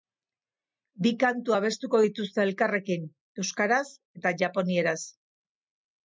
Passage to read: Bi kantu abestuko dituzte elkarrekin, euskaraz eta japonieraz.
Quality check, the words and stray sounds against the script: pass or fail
pass